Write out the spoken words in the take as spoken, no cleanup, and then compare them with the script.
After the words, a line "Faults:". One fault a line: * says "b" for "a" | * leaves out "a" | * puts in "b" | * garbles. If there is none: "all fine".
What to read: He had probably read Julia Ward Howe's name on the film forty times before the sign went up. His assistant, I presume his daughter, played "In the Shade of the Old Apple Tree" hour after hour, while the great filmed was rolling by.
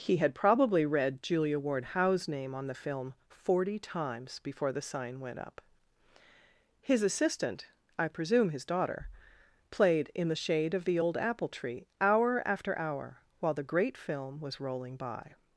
He had probably read Julia Ward Howe's name on the film forty times before the sign went up. His assistant, I presume his daughter, played "In the Shade of the Old Apple Tree" hour after hour, while the great film was rolling by.
Faults:
* says "film" for "filmed"